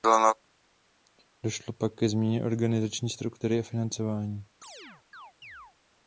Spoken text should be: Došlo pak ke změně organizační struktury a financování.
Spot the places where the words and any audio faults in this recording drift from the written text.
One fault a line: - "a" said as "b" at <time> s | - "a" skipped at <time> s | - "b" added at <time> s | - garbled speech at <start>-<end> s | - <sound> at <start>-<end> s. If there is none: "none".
- chirp at 4.6-5.7 s